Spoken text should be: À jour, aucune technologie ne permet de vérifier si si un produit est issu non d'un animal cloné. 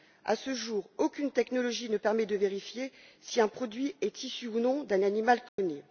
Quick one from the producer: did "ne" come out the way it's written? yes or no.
yes